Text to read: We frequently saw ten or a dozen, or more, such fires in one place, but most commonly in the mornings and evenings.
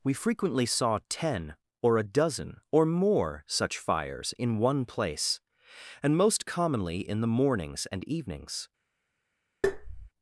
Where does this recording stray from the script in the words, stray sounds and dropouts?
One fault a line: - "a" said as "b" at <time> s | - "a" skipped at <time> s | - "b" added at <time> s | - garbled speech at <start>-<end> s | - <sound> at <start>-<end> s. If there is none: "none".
- "but" said as "and" at 6.0 s
- tap at 9.6-10.1 s